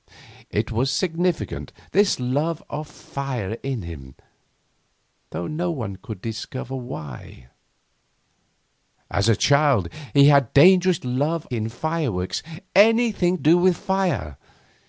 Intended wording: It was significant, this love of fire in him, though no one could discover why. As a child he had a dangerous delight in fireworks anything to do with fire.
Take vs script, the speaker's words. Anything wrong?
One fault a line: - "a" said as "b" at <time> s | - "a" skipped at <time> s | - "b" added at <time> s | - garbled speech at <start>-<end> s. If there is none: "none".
- "delight" said as "love" at 11.0 s
- "to" skipped at 13.4 s